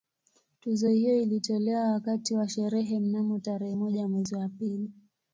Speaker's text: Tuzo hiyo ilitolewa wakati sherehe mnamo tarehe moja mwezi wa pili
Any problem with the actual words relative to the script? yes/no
yes